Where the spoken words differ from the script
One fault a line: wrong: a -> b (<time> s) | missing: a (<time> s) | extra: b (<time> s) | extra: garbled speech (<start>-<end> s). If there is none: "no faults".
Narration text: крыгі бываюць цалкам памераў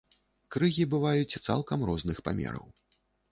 extra: розных (1.9 s)